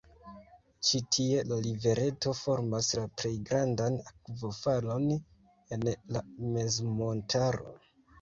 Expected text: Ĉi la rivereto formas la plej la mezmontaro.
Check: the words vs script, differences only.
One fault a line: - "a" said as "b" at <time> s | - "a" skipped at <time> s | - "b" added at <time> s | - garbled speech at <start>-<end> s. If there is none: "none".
- "tie" added at 1.1 s
- "grandan akvofalon en" added at 3.5 s